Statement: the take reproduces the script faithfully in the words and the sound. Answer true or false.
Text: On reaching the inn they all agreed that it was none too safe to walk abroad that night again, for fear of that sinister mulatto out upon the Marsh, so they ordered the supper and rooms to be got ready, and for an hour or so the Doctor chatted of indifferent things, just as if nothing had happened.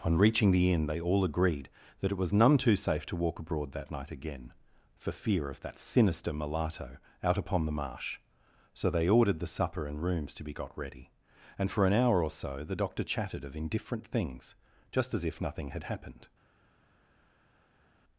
true